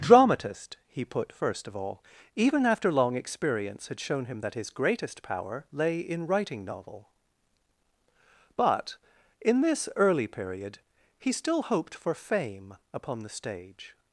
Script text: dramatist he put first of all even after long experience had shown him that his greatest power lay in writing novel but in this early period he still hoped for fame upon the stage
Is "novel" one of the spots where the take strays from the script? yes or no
no